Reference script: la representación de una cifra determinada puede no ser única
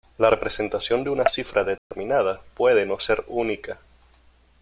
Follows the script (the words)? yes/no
yes